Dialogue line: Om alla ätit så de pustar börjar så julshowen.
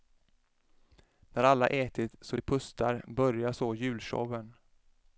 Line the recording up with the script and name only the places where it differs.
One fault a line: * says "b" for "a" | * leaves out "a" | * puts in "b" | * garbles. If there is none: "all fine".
* says "När" for "Om"